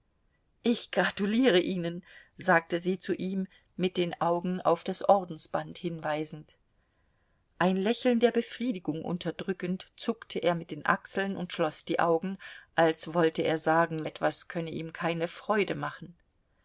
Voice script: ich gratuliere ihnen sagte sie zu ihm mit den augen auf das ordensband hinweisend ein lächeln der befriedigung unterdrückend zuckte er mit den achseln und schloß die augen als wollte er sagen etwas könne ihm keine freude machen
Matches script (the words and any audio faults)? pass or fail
pass